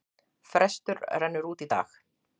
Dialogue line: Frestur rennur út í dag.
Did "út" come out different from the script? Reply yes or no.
no